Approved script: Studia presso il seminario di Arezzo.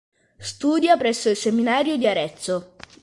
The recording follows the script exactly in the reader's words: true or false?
true